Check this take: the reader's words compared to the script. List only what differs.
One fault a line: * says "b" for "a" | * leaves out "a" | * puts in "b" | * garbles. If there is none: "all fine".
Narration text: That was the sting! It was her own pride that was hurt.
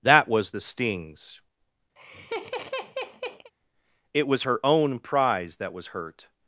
* says "stings" for "sting"
* says "prize" for "pride"